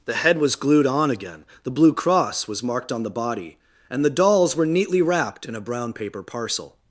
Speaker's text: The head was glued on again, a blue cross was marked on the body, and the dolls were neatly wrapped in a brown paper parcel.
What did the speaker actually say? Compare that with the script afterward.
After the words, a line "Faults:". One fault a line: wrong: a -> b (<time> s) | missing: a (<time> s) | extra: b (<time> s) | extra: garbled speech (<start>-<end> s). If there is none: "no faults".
The head was glued on again, the blue cross was marked on the body, and the dolls were neatly wrapped in a brown paper parcel.
Faults:
wrong: a -> the (1.6 s)